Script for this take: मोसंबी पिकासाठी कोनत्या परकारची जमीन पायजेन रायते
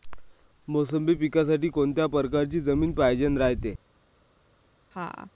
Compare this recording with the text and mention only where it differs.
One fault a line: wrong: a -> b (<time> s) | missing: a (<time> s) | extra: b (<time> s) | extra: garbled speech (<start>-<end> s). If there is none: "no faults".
no faults